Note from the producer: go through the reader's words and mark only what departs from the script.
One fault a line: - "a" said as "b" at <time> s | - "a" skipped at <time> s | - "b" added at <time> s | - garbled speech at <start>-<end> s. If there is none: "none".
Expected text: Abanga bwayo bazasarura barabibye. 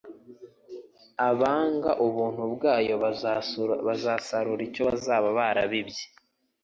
- "ubuntu" added at 2.1 s
- "icyo bazaba" added at 4.7 s